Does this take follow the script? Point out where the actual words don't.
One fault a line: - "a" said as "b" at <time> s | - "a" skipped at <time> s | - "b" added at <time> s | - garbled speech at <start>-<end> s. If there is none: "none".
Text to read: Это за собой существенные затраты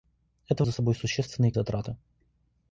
none